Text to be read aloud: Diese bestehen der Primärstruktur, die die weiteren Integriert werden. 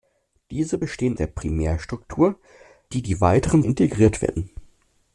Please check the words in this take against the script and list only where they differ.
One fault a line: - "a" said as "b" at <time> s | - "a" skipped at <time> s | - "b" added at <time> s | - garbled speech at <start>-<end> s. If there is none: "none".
none